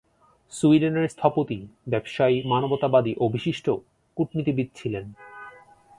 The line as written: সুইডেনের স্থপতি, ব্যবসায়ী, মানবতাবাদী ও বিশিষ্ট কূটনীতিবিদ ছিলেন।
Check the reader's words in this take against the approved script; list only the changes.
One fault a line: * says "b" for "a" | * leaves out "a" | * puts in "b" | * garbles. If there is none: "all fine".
all fine